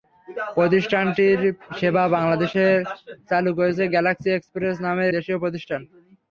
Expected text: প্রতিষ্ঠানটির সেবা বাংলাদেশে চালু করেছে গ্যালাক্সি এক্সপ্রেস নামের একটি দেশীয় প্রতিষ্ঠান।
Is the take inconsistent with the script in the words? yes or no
yes